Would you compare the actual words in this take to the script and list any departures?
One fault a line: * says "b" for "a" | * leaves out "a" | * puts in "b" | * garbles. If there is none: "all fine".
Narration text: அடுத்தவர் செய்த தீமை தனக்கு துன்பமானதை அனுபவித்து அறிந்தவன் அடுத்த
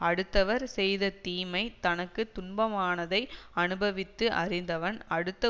all fine